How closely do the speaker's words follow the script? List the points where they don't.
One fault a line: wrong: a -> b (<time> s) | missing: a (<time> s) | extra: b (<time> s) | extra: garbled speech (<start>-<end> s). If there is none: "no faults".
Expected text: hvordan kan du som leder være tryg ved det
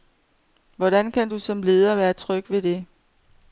no faults